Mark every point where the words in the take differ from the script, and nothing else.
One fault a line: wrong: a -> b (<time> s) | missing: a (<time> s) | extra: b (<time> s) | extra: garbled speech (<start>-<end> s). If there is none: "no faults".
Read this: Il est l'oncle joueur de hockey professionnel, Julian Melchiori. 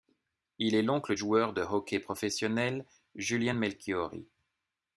no faults